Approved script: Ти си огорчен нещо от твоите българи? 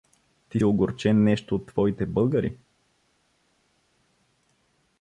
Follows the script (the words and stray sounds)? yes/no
no